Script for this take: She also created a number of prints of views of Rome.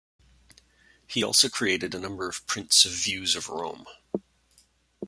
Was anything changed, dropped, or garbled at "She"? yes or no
yes